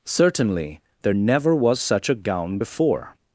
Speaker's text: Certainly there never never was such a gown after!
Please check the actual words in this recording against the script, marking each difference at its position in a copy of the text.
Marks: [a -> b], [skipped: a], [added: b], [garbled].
Certainly there never [skipped: never] was such a gown [after! -> before]